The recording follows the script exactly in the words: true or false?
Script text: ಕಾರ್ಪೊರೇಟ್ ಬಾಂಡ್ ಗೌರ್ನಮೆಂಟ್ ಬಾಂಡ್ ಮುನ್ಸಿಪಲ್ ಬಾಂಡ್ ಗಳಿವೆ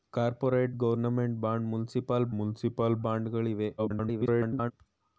false